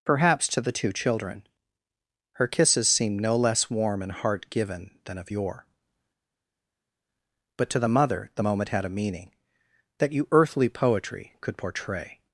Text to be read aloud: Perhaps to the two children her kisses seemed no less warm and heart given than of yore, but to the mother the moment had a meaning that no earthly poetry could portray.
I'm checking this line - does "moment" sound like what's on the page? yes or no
yes